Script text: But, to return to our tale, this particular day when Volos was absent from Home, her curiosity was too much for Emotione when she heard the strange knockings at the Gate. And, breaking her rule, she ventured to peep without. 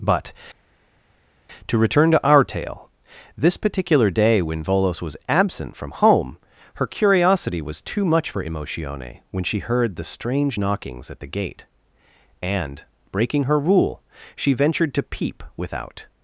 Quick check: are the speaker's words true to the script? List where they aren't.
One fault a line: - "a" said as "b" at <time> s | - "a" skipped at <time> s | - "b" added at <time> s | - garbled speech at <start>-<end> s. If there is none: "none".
none